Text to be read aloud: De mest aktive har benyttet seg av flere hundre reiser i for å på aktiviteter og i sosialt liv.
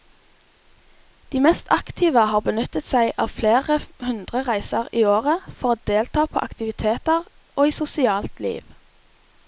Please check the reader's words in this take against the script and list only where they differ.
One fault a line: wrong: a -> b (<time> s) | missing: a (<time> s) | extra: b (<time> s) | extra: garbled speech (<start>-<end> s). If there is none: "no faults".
extra: året (5.2 s)
extra: delta (5.9 s)